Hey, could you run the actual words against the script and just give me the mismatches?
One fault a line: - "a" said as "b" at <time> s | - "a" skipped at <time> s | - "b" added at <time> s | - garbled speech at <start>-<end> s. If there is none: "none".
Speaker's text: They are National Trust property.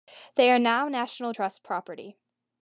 - "now" added at 0.6 s